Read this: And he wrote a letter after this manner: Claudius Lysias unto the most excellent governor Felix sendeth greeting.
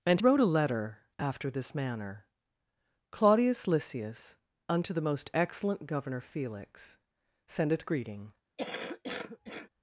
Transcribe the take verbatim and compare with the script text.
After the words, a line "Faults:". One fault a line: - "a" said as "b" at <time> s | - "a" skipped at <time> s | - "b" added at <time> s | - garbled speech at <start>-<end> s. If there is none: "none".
And wrote a letter after this manner: Claudius Lysias unto the most excellent governor Felix sendeth greeting.
Faults:
- "he" skipped at 0.2 s